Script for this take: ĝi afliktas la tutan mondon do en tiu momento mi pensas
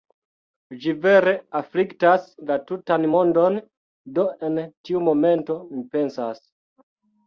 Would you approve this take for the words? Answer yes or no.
no